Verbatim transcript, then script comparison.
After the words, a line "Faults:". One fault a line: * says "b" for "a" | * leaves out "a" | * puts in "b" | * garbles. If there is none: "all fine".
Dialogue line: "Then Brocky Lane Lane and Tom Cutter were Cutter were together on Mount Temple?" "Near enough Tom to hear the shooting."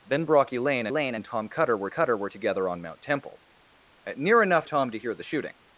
"Then Brocky Lane Lane and Tom Cutter were Cutter were together on Mount Temple?" "Near enough Tom to hear the shooting."
Faults:
all fine